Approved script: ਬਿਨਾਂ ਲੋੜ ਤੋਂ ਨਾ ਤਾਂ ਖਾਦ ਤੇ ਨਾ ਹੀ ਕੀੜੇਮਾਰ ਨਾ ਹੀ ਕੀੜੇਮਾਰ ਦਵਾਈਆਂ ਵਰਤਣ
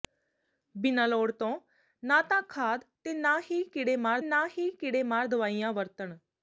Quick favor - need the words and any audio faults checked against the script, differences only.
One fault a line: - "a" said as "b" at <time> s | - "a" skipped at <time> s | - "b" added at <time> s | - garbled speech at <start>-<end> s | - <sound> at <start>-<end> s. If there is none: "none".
none